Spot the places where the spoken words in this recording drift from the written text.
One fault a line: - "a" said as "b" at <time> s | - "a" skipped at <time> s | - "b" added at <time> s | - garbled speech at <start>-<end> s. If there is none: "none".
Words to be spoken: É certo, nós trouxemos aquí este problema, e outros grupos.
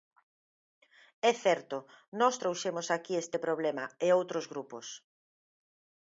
none